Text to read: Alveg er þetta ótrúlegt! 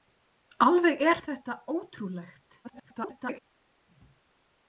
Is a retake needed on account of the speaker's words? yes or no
yes